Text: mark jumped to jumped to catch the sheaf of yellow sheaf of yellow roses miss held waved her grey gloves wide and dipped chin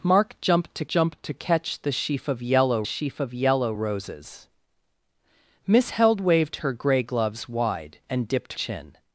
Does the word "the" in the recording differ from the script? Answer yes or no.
no